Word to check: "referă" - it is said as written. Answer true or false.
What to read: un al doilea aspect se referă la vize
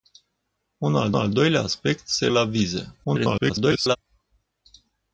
false